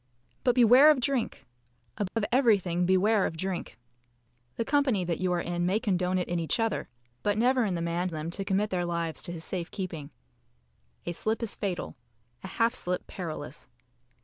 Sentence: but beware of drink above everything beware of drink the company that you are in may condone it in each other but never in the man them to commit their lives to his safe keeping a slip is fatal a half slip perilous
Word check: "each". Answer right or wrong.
right